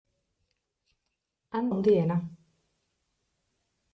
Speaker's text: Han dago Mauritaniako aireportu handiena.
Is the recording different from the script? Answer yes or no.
yes